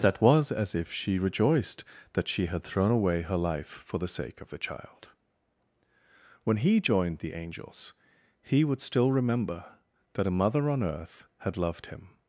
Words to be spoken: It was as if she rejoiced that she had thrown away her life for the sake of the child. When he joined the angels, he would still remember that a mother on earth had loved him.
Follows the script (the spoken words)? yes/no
no